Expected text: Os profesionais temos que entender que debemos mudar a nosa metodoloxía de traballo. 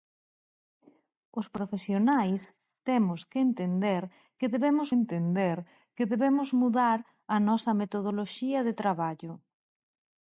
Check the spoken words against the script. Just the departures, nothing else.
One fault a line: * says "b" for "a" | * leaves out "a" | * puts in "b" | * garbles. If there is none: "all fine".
* puts in "entender que debemos"